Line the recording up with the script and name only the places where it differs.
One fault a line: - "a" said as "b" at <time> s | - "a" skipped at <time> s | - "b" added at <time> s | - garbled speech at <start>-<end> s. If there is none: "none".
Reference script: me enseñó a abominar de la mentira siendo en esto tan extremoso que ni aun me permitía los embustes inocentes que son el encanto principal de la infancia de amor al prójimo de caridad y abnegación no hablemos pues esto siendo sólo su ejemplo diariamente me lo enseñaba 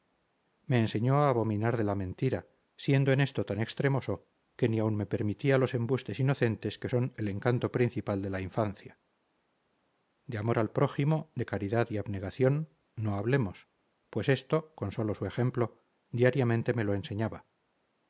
- "siendo" said as "con" at 14.7 s